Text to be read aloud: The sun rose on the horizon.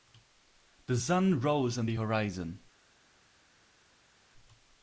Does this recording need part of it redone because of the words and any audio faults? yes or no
no